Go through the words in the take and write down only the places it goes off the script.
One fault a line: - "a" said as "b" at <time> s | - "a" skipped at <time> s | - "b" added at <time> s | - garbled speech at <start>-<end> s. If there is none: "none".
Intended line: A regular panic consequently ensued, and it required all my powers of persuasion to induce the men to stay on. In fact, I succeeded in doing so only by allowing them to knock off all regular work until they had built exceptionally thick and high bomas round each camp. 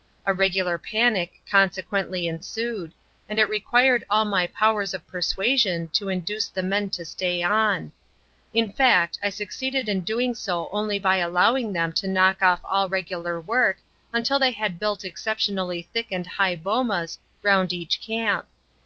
none